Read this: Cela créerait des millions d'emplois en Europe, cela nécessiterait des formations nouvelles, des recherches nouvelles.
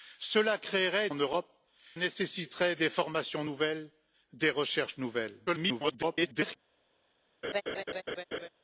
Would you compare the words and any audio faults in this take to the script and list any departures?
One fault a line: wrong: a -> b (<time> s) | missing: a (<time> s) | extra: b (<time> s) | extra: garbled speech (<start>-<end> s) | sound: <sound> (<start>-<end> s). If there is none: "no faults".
missing: des millions d'emplois (1.1 s)
missing: cela (1.5 s)
extra: garbled speech (5.5-6.6 s)
sound: laugh (7.4-8.5 s)